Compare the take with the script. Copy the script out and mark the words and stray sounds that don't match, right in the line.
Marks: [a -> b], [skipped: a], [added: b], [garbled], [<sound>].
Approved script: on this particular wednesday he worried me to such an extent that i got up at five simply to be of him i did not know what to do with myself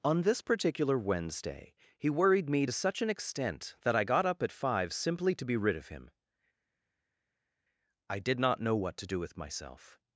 on this particular wednesday he worried me to such an extent that i got up at five simply to be [added: rid] of him i did not know what to do with myself